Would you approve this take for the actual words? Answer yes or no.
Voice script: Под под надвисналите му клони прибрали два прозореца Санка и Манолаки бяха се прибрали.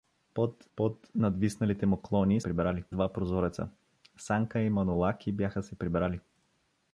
yes